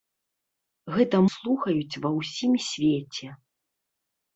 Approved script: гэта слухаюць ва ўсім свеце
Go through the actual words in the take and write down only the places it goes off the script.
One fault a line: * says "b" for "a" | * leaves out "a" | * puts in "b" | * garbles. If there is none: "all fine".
all fine